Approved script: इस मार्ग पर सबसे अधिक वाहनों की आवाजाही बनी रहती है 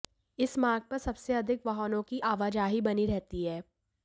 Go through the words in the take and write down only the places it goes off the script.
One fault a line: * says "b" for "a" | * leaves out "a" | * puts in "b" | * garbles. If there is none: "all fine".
all fine